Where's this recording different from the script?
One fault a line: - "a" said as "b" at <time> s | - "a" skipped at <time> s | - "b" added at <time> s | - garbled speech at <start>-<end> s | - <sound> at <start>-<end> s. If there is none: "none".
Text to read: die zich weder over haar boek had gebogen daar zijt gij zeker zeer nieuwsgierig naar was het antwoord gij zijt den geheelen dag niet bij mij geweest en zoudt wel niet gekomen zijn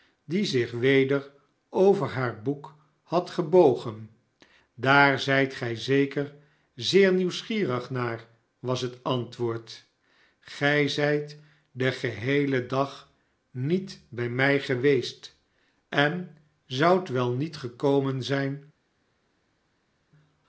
none